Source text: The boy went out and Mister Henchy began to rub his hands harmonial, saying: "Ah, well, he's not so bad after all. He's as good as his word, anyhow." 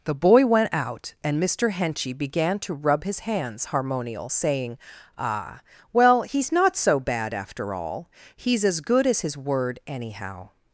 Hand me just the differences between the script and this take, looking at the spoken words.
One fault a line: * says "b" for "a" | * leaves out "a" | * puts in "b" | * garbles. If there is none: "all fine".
all fine